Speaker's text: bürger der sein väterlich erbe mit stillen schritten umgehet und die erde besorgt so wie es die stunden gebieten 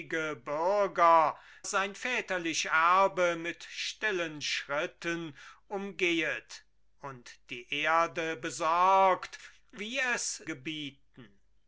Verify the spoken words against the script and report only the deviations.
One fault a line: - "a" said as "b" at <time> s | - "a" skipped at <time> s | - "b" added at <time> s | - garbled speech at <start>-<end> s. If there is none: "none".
- "der" skipped at 1.4 s
- "so" skipped at 9.4 s
- "die stunden" skipped at 10.4 s